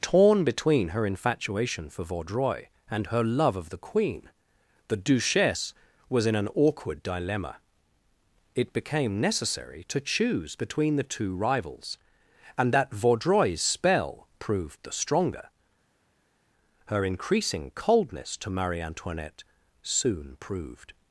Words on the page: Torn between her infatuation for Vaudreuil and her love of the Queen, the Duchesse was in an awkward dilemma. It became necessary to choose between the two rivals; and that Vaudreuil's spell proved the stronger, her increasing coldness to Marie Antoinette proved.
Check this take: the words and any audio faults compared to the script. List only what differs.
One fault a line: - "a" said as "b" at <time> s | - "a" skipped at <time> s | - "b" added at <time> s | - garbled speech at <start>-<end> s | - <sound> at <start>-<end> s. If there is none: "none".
- "soon" added at 19.8 s